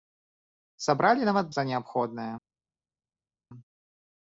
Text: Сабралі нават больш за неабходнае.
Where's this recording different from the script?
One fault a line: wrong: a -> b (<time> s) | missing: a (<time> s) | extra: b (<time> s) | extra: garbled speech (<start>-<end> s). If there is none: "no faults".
missing: больш (1.5 s)